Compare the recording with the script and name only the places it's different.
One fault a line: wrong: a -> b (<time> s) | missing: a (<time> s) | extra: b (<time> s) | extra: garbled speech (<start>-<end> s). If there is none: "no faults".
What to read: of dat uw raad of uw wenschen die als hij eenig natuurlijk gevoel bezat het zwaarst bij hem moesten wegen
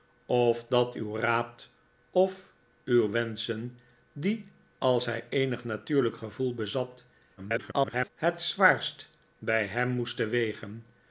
extra: garbled speech (7.4-8.1 s)